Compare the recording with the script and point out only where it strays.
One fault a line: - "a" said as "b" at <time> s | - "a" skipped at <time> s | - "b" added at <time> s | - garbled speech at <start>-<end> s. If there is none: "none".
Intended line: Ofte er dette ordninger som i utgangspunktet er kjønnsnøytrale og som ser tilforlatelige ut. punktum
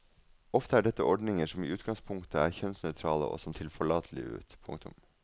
- "ser" skipped at 3.5 s